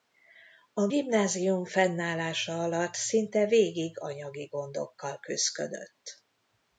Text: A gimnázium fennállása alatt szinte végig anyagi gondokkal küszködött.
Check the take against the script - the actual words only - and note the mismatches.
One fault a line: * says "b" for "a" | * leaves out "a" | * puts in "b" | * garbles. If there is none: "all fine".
all fine